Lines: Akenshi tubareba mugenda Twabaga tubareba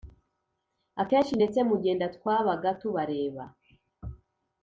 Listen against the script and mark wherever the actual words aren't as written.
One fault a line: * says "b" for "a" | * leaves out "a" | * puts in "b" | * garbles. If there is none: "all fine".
* says "ndetse" for "tubareba"